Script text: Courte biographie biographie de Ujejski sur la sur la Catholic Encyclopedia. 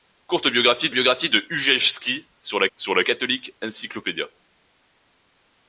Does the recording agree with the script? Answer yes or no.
yes